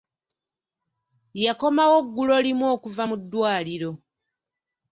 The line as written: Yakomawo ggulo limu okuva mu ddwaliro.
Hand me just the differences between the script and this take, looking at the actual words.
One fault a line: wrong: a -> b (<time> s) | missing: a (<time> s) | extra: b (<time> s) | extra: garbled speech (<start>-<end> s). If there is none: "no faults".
no faults